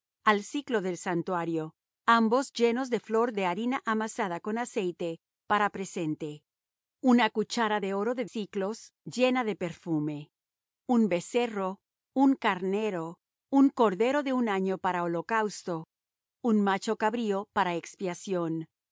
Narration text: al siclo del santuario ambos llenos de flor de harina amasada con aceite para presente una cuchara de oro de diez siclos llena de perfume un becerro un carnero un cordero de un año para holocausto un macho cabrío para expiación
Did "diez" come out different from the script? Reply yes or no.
yes